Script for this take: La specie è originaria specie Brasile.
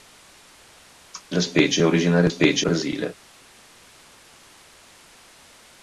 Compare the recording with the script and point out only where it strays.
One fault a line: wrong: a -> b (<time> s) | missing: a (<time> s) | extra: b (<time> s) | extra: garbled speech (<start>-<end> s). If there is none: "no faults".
no faults